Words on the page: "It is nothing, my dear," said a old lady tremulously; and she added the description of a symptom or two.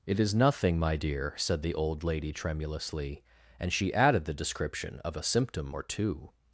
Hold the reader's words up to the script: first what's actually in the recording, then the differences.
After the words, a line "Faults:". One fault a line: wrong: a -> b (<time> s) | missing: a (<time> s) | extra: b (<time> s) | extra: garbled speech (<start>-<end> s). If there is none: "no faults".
"It is nothing, my dear," said the old lady tremulously; and she added the description of a symptom or two.
Faults:
wrong: a -> the (1.6 s)